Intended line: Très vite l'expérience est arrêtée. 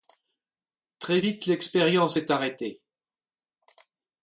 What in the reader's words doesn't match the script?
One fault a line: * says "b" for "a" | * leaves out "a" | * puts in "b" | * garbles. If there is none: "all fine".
all fine